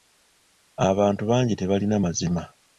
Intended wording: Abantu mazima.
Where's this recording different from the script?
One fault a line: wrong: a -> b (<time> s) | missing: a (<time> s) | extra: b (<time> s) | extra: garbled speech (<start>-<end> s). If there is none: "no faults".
extra: bangi tebalina (1.3 s)